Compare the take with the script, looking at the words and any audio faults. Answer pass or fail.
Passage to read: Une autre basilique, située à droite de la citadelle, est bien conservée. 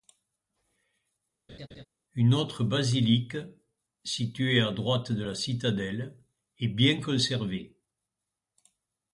fail